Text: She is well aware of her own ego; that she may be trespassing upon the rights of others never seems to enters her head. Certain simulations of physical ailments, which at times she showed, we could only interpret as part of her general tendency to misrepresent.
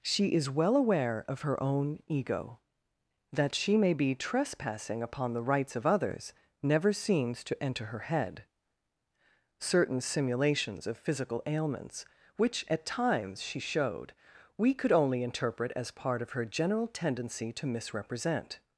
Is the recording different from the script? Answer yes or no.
yes